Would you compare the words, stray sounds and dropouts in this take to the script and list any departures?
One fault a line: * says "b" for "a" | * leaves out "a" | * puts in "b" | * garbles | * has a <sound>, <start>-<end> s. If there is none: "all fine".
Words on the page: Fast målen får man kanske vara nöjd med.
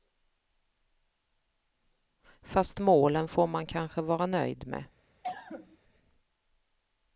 * has a cough, 5.2-5.8 s